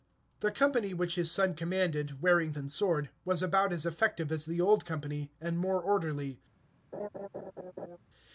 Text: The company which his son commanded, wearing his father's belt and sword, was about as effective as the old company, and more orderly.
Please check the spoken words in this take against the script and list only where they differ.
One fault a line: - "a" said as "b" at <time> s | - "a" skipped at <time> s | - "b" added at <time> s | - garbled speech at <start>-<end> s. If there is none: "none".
- "his father's belt" skipped at 2.5 s